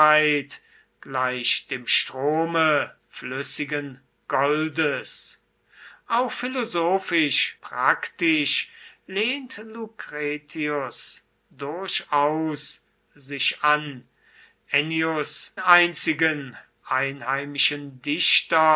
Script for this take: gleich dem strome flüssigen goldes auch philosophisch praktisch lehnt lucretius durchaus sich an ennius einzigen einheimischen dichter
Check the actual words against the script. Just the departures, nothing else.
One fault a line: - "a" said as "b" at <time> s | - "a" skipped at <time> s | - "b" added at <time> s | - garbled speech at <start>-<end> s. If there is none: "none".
none